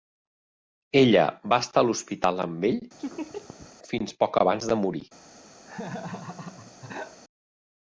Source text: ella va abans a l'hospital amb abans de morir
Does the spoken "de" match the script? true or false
true